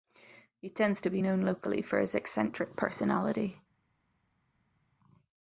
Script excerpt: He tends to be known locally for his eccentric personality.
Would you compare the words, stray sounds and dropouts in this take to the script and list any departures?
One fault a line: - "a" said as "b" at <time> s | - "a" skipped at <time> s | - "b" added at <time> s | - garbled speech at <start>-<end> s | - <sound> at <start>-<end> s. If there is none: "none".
none